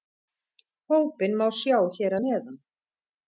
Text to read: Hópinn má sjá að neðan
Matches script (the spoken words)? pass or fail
fail